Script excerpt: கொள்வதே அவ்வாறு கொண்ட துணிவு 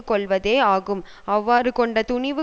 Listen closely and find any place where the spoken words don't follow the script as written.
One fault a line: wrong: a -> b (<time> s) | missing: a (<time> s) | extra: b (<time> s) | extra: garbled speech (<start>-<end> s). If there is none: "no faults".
extra: ஆகும் (0.7 s)